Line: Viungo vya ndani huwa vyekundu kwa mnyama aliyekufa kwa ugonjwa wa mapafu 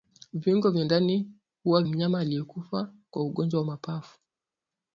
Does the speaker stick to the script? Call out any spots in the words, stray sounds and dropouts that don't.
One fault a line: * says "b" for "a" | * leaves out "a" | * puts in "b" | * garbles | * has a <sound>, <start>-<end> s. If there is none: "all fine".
* leaves out "vyekundu kwa"